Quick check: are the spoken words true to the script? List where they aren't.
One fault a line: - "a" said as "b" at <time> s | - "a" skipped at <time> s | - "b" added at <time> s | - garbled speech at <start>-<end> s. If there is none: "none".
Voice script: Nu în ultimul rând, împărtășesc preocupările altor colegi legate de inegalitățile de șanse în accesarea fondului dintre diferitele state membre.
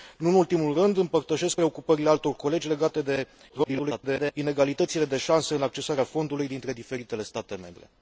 - garbled speech at 3.5-4.3 s